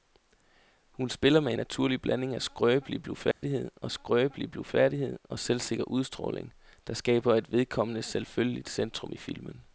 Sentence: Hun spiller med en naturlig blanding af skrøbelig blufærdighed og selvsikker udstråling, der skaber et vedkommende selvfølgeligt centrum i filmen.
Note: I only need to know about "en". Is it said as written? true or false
false